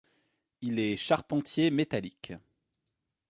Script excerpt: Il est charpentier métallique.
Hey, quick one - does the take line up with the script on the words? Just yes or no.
yes